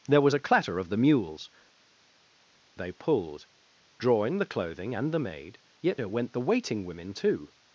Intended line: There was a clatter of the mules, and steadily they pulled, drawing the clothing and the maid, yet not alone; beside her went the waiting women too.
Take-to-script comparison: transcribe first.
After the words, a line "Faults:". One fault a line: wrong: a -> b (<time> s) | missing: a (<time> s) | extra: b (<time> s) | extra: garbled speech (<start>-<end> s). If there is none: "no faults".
There was a clatter of the mules, they pulled, drawing the clothing and the maid, yet her went the waiting women too.
Faults:
missing: and steadily (1.5 s)
missing: not alone beside (6.0 s)